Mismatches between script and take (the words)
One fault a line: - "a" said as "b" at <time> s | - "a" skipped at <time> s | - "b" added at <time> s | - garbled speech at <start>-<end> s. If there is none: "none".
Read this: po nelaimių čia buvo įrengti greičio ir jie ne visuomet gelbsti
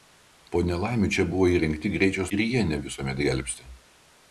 none